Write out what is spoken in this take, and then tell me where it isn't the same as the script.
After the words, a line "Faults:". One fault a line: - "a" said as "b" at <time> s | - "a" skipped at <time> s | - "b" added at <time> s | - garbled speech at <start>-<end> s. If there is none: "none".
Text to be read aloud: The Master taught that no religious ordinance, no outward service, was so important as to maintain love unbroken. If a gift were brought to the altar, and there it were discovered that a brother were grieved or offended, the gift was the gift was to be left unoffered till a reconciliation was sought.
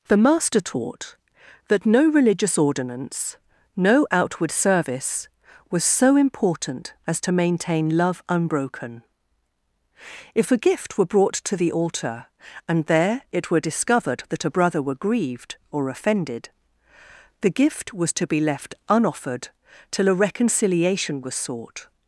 The Master taught that no religious ordinance, no outward service, was so important as to maintain love unbroken. If a gift were brought to the altar, and there it were discovered that a brother were grieved or offended, the gift was to be left unoffered till a reconciliation was sought.
Faults:
- "the gift was" skipped at 18.1 s